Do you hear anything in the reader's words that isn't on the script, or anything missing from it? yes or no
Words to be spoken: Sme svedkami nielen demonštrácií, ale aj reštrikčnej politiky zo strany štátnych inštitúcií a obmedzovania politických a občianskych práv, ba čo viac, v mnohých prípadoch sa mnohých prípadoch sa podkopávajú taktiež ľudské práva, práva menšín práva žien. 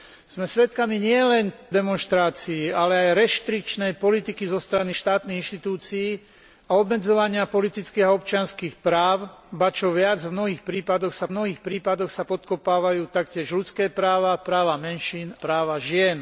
no